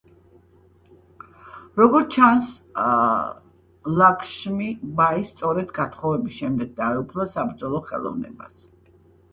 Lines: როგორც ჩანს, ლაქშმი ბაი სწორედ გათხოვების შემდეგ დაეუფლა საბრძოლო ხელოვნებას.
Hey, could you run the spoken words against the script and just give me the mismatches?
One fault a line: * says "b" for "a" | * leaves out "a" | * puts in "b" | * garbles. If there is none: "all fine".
all fine